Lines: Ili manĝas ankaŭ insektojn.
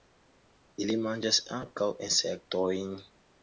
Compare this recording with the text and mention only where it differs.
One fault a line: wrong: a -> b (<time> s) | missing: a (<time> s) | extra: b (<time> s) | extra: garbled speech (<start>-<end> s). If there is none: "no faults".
no faults